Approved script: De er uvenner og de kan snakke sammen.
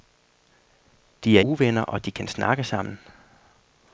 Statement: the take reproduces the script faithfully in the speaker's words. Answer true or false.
true